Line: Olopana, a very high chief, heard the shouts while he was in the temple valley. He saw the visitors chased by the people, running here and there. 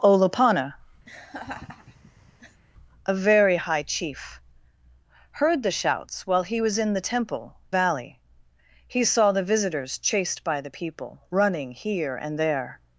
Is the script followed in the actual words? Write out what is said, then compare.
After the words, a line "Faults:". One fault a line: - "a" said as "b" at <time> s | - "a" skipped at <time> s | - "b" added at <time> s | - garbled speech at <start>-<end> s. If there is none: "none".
Olopana, a very high chief, heard the shouts while he was in the temple valley. He saw the visitors chased by the people, running here and there.
Faults:
none